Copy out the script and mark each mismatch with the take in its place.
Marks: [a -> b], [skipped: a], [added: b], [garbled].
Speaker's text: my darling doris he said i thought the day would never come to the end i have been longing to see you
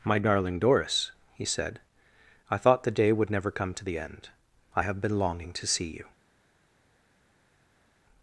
my darling doris he said i thought the day would never come to the end i have been longing to see you